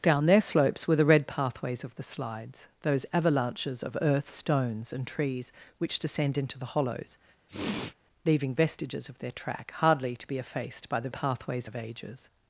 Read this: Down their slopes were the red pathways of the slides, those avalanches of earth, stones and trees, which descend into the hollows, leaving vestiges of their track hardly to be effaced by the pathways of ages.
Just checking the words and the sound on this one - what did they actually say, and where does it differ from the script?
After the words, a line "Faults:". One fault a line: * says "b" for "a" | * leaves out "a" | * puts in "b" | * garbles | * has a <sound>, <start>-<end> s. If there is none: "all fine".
Down their slopes were the red pathways of the slides, those avalanches of earth, stones and trees, which descend into the hollows, leaving vestiges of their track hardly to be effaced by the pathways of ages.
Faults:
* has a sniff, 7.5-8.0 s